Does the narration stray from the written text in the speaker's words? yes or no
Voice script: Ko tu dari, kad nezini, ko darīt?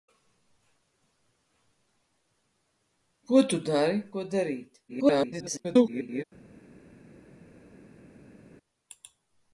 yes